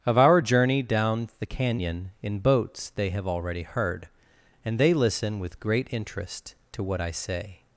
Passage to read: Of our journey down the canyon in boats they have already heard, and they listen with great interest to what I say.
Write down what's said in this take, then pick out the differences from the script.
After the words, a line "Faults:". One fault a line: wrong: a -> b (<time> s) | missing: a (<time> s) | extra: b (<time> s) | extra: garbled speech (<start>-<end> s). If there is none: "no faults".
Of our journey down the canyon in boats they have already heard, and they listen with great interest to what I say.
Faults:
no faults